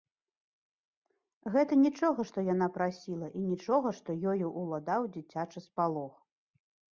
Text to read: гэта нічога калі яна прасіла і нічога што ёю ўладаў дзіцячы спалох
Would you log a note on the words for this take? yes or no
yes